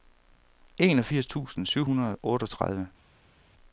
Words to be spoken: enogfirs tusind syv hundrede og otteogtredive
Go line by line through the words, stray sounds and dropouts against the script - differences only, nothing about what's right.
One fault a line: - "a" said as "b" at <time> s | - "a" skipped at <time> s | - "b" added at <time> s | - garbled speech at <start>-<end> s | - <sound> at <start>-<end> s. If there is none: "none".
none